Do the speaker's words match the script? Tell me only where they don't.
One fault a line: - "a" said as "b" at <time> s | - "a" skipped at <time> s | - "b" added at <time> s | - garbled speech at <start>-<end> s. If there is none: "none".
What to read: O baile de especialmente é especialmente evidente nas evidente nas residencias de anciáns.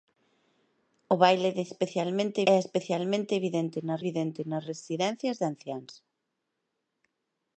none